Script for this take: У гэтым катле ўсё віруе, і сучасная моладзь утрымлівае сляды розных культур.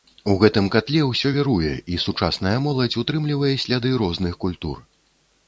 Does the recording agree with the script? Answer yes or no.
yes